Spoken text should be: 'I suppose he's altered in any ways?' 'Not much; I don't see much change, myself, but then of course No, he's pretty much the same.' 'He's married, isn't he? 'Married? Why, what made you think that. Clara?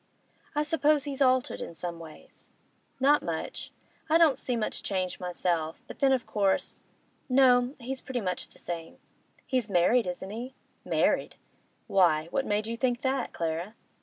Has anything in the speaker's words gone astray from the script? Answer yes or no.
yes